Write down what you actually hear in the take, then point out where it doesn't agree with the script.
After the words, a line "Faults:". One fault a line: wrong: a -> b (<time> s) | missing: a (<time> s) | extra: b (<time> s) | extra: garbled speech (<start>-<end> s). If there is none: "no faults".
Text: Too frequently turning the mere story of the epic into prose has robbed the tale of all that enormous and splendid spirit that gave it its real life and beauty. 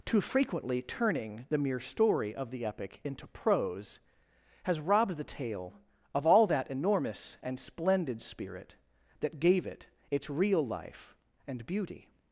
Too frequently turning the mere story of the epic into prose has robbed the tale of all that enormous and splendid spirit that gave it its real life and beauty.
Faults:
no faults